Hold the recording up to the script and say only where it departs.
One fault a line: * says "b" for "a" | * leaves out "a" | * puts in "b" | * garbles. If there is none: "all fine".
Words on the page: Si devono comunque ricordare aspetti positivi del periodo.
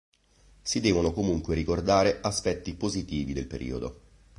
all fine